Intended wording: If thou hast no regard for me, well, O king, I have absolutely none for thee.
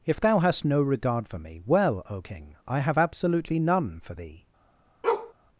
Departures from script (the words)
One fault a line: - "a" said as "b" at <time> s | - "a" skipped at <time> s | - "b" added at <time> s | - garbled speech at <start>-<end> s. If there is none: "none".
none